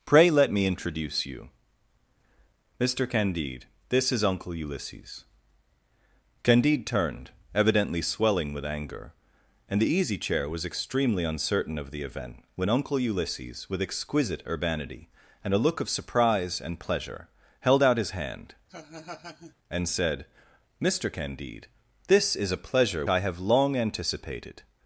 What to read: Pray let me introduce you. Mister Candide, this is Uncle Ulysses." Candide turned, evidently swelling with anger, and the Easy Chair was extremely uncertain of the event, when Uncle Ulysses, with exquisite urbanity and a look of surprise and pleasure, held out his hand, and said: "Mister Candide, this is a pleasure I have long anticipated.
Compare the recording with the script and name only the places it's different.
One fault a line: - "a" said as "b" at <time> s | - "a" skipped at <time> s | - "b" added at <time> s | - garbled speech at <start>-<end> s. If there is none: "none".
none